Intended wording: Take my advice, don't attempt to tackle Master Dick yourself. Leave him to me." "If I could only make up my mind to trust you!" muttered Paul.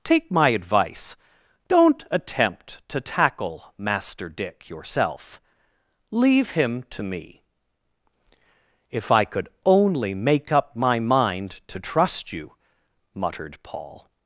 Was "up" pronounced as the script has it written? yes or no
yes